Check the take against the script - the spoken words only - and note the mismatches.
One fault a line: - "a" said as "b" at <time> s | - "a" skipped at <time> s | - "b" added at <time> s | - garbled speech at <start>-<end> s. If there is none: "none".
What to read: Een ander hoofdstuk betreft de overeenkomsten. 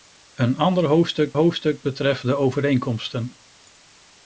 - "hoofdstuk" added at 1.3 s